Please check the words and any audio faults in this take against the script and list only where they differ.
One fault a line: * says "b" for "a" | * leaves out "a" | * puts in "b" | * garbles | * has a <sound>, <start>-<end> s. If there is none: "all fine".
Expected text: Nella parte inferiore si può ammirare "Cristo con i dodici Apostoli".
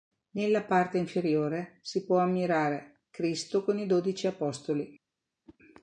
* has a whoosh, 5.4-5.6 s